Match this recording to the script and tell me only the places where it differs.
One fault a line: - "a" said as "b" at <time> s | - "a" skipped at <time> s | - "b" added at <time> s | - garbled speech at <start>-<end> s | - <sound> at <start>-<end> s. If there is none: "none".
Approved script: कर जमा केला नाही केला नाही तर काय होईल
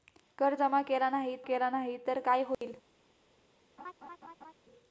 - dropout at 2.5-2.6 s
- laugh at 3.8-4.5 s